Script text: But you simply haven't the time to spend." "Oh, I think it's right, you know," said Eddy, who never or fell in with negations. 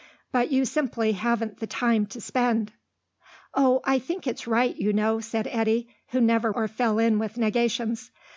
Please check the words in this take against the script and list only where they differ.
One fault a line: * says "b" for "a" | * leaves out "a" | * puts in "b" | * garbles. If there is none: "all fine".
all fine